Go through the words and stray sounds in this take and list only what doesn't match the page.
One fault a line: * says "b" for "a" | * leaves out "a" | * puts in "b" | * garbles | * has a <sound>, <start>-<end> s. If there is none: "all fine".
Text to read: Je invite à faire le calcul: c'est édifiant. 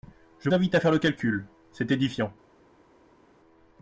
all fine